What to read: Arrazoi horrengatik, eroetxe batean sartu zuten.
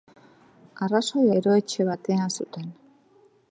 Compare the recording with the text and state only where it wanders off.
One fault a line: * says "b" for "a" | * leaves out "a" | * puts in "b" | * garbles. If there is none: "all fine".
* leaves out "horrengatik"
* leaves out "sartu"